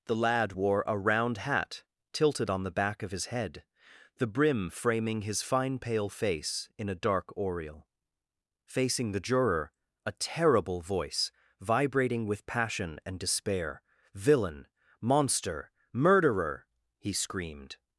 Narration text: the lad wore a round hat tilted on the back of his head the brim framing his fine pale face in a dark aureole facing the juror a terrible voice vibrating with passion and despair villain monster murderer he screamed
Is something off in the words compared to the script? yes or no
no